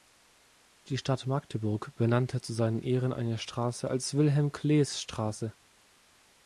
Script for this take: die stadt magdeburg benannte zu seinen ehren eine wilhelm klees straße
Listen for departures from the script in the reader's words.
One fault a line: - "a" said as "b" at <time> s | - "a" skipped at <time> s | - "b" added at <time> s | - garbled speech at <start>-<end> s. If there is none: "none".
- "straße als" added at 3.4 s